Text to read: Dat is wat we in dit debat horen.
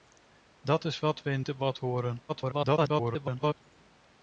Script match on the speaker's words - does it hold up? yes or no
no